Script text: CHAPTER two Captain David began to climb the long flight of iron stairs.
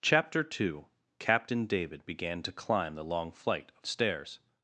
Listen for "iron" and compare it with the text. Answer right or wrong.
wrong